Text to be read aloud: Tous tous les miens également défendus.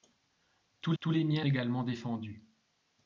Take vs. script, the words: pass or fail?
pass